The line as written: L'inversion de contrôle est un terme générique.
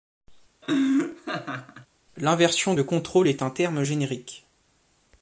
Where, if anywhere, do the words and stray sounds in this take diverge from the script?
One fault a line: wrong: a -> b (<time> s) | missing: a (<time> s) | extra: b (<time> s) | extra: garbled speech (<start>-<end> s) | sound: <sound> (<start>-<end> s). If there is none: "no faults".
sound: laugh (0.6-1.9 s)